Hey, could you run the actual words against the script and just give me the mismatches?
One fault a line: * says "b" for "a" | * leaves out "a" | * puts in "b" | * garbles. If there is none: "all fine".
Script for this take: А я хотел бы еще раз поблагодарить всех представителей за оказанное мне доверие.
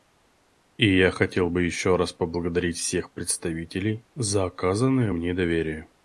* says "И" for "А"